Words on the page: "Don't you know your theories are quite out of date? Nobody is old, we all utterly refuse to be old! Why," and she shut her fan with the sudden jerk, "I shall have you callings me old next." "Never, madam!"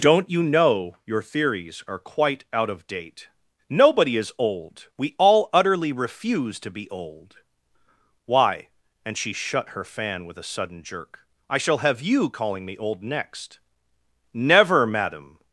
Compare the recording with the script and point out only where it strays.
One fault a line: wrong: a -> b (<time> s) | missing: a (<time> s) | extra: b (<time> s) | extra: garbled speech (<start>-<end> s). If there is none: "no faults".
wrong: the -> a (10.4 s)
wrong: callings -> calling (12.3 s)